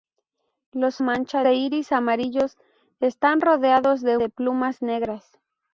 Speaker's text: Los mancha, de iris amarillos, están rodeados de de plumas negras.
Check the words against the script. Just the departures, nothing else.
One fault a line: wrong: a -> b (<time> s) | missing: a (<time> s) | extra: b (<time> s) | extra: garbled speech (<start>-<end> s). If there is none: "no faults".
no faults